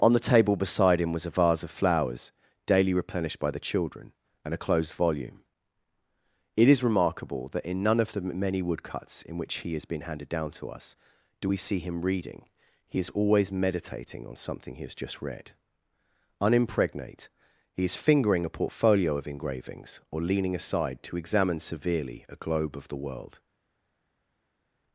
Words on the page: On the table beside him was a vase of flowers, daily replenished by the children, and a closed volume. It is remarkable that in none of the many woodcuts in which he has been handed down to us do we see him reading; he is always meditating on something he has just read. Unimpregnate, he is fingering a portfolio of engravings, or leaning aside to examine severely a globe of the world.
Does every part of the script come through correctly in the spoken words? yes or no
yes